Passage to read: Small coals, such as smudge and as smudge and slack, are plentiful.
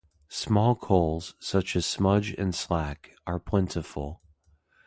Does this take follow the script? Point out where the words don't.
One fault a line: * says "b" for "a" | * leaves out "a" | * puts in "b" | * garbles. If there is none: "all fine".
* leaves out "as smudge and"